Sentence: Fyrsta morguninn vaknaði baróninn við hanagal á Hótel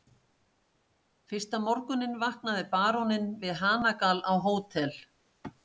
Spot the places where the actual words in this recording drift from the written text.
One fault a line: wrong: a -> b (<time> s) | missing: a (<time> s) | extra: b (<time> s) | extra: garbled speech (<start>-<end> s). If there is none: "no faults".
no faults